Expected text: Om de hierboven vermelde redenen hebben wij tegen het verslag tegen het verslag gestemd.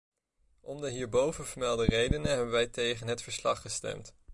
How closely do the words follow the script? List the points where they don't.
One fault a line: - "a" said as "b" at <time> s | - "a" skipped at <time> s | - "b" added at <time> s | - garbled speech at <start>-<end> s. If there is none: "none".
- "tegen het verslag" skipped at 3.6 s